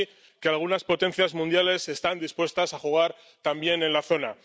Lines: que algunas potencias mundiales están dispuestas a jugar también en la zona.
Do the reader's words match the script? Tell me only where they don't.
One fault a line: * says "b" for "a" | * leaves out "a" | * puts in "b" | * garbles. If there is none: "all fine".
all fine